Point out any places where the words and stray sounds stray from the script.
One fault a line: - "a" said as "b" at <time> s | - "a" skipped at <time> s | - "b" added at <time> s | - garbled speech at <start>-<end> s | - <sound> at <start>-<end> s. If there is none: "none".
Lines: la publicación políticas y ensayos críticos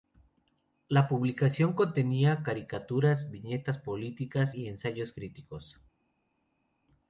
- "contenía caricaturas viñetas" added at 1.7 s